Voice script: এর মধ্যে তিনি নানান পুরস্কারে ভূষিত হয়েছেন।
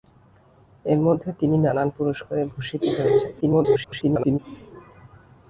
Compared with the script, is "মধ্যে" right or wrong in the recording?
right